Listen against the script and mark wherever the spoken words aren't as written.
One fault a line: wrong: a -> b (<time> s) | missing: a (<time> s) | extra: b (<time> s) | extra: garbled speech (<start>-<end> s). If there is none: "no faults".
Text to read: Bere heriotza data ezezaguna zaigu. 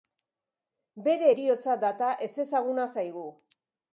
no faults